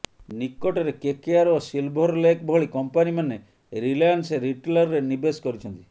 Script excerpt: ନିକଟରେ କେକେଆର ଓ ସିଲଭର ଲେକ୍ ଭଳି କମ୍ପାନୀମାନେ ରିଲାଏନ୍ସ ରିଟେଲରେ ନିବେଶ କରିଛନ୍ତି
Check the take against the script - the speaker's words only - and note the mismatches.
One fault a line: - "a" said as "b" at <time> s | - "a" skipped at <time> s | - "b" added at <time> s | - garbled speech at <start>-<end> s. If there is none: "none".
none